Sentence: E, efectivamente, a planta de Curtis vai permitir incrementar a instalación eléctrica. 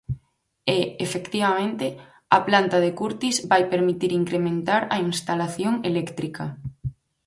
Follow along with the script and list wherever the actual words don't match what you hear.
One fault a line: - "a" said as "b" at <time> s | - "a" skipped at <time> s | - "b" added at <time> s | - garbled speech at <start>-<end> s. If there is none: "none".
none